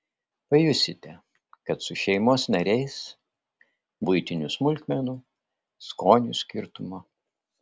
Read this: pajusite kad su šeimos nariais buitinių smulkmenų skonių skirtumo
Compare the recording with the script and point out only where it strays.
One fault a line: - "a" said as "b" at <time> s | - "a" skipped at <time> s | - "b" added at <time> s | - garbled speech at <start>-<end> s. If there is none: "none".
none